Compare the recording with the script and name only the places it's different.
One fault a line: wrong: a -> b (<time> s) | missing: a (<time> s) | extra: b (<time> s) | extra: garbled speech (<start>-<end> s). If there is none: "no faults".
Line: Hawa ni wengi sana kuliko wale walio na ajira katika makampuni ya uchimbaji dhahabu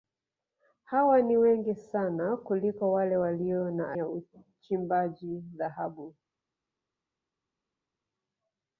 missing: ajira katika makampuni (3.9 s)